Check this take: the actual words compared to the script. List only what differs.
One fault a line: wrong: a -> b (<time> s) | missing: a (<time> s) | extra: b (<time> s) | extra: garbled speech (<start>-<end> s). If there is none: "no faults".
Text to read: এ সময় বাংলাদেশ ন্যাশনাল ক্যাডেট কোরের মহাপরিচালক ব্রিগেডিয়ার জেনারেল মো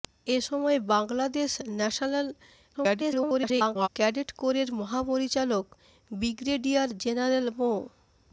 extra: garbled speech (2.7-3.9 s)